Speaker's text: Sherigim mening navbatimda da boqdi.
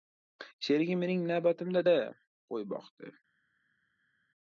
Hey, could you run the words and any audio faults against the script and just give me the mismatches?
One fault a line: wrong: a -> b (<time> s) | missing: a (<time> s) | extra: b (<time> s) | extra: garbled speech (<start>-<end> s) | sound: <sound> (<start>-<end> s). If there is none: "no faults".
extra: qo‘y (2.5 s)